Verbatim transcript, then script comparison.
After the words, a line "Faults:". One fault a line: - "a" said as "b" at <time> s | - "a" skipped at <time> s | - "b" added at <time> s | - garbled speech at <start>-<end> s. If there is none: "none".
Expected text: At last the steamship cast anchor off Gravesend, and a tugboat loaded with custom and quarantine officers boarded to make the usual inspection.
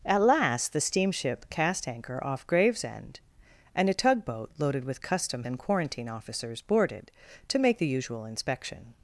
At last the steamship cast anchor off Gravesend, and a tugboat loaded with custom and quarantine officers boarded to make the usual inspection.
Faults:
none